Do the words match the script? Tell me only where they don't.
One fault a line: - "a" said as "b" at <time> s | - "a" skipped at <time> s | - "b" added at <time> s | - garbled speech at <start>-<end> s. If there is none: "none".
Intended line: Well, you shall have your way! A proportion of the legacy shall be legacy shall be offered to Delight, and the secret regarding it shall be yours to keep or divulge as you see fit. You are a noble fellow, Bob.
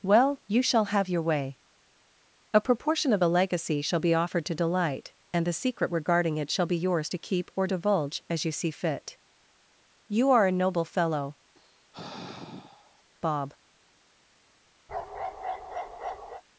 - "legacy shall be" skipped at 4.1 s